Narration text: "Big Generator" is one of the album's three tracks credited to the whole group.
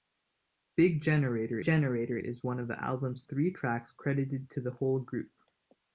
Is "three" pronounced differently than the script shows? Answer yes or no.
no